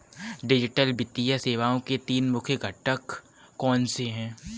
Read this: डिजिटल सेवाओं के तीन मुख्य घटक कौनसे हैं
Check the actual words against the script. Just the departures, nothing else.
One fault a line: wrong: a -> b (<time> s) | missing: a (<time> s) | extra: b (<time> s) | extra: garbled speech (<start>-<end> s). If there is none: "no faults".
extra: वित्तीय (0.9 s)